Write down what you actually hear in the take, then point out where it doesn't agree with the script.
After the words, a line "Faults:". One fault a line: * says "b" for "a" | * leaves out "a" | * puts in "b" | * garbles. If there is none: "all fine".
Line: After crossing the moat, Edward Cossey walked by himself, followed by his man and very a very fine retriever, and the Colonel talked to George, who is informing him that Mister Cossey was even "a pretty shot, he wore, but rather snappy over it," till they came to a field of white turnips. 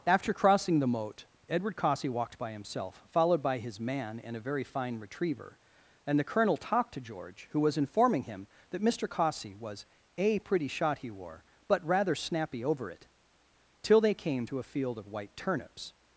After crossing the moat, Edward Cossey walked by himself, followed by his man and a very fine retriever, and the Colonel talked to George, who was informing him that Mister Cossey was "a pretty shot, he wore, but rather snappy over it," till they came to a field of white turnips.
Faults:
* leaves out "very"
* says "was" for "is"
* leaves out "even"